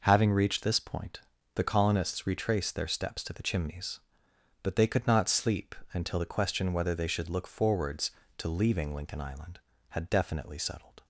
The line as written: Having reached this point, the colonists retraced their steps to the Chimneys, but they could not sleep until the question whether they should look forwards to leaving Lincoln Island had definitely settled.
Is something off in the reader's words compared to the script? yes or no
no